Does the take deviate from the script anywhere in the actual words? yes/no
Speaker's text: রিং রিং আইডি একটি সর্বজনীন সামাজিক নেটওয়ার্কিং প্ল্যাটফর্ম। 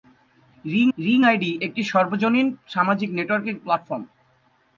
no